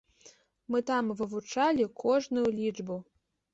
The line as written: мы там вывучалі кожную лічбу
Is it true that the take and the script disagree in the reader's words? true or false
false